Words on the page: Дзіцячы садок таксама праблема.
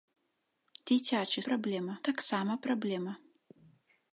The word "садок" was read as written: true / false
false